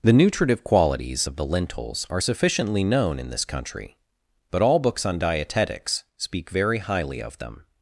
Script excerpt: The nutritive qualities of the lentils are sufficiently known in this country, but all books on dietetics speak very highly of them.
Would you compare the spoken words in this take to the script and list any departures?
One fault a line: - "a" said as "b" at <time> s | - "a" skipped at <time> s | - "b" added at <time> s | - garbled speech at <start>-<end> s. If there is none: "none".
none